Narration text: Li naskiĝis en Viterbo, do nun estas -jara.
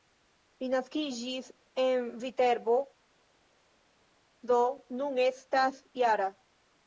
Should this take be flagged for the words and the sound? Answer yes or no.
no